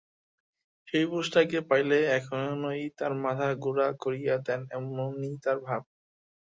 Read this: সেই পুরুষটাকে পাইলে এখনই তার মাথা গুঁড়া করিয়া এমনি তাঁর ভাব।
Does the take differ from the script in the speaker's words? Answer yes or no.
yes